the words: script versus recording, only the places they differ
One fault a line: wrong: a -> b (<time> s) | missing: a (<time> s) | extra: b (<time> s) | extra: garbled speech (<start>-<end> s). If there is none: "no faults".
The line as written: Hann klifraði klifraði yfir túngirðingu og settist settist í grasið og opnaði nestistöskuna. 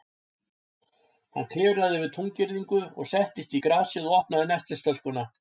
missing: klifraði (2.0 s)
missing: settist (3.5 s)